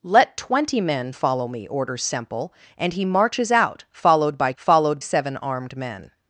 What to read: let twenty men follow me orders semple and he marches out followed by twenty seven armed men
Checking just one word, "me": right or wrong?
right